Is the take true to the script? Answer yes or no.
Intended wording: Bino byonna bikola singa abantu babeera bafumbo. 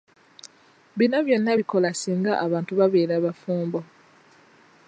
yes